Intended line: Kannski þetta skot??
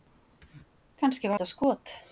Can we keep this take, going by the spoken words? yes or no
yes